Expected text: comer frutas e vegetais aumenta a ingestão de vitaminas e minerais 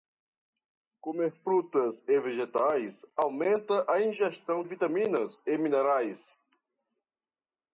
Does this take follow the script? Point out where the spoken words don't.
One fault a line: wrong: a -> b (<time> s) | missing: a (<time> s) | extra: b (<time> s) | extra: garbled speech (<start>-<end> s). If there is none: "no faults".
missing: de (4.6 s)